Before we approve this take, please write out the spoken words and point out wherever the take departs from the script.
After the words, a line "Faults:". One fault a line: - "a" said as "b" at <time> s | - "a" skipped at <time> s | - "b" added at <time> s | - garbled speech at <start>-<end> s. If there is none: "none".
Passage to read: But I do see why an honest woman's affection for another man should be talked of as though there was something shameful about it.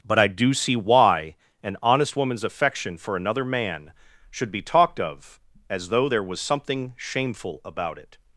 But I do see why an honest woman's affection for another man should be talked of as though there was something shameful about it.
Faults:
none